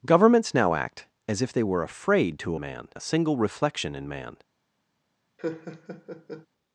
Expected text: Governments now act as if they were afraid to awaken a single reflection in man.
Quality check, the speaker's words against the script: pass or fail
fail